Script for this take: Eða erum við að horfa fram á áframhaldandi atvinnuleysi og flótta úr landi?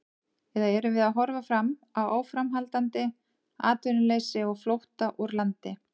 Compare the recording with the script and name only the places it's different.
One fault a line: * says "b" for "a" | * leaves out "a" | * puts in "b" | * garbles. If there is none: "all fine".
all fine